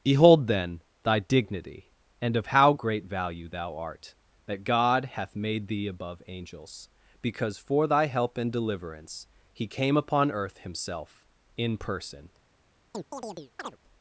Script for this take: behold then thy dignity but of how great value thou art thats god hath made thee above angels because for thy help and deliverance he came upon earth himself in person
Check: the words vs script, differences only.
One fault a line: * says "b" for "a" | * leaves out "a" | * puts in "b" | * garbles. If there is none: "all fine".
* says "and" for "but"
* says "that" for "thats"